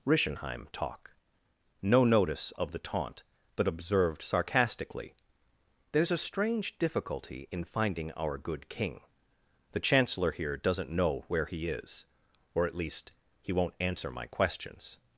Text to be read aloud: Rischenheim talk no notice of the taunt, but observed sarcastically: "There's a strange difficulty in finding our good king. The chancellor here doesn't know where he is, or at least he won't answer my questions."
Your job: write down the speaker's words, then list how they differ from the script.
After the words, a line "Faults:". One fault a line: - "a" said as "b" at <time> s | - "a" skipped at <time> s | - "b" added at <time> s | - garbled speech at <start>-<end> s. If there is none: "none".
Rischenheim talk no notice of the taunt, but observed sarcastically: "There's a strange difficulty in finding our good king. The chancellor here doesn't know where he is, or at least he won't answer my questions."
Faults:
none